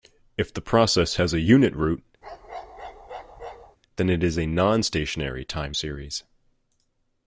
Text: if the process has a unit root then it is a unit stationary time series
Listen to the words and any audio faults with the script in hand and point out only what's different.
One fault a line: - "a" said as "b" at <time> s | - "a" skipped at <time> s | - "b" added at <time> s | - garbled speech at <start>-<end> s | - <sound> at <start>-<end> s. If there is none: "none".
- bark at 2.2-3.8 s
- "unit" said as "non" at 4.5 s